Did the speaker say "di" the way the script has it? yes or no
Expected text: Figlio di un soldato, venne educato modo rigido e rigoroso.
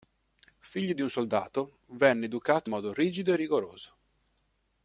yes